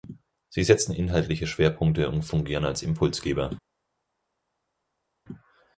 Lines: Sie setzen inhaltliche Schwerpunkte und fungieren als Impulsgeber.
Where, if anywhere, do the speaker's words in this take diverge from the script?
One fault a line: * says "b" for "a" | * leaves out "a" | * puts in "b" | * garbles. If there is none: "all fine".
all fine